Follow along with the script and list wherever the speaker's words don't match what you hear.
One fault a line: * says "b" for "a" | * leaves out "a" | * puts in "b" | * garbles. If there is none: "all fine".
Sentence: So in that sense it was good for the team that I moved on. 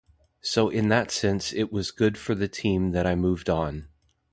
all fine